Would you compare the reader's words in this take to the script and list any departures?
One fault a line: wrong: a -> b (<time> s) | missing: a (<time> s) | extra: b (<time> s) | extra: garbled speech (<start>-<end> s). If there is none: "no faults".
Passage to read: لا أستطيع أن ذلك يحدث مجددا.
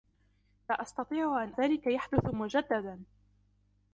no faults